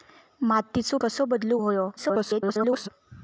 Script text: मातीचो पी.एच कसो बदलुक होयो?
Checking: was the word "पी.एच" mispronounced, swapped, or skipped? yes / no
yes